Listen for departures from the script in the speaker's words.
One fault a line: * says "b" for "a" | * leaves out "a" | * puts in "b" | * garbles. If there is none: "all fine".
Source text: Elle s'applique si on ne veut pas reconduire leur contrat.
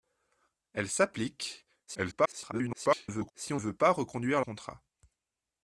* garbles
* leaves out "ne"
* leaves out "leur"